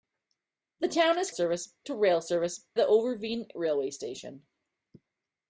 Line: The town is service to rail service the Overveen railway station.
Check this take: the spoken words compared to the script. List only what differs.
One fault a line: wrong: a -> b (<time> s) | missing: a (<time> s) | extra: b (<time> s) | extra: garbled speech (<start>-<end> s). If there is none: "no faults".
no faults